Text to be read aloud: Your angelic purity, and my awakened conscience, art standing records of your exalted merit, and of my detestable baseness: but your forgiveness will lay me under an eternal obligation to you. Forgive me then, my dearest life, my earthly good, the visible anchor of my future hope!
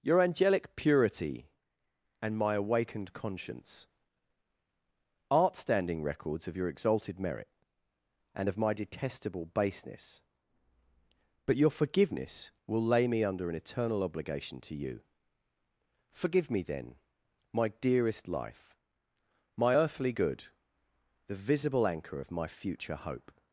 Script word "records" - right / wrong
right